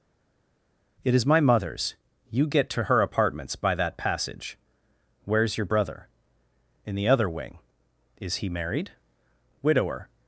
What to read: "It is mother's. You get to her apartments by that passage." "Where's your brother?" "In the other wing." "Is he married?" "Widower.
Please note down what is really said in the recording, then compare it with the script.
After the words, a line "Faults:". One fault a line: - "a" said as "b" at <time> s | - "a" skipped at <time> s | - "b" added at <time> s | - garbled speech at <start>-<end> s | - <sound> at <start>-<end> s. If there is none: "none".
"It is my mother's. You get to her apartments by that passage." "Where's your brother?" "In the other wing." "Is he married?" "Widower.
Faults:
- "my" added at 1.2 s